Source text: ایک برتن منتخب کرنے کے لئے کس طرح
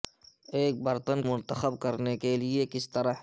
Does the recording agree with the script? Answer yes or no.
yes